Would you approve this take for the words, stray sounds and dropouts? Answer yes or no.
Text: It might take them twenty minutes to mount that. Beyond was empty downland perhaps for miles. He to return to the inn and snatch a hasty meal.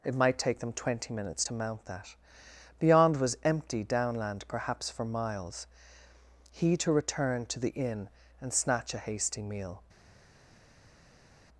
yes